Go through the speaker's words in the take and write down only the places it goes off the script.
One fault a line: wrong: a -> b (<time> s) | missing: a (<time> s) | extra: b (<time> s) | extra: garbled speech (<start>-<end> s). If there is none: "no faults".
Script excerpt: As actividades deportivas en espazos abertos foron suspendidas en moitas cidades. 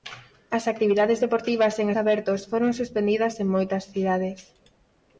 missing: espazos (1.9 s)